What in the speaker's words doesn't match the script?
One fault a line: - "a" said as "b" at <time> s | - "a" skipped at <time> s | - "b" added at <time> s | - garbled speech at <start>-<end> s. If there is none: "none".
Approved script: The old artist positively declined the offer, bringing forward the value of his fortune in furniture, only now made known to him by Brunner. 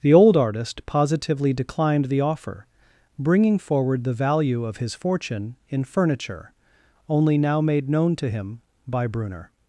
none